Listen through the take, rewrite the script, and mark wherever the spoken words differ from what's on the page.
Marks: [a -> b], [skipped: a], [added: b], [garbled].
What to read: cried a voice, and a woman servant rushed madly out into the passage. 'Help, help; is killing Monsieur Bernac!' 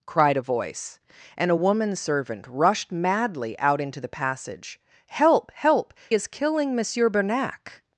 cried a voice, and a woman servant rushed madly out into the passage. 'Help, help; is killing Monsieur Bernac!'